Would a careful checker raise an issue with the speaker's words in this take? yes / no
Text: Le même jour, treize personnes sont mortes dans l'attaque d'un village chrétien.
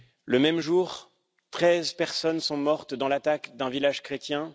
no